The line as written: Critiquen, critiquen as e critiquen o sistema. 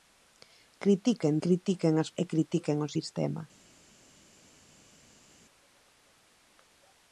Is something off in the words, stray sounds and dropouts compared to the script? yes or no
no